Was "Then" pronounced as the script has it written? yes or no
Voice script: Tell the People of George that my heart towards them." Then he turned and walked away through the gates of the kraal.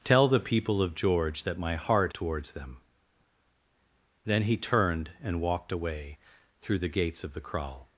yes